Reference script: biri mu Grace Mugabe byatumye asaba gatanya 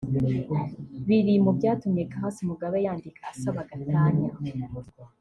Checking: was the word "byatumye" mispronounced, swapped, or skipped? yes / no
yes